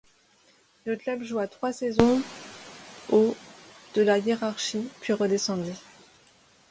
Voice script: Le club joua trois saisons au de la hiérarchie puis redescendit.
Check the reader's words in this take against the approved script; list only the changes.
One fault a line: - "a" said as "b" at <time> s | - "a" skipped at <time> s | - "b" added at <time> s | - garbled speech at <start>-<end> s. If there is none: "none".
none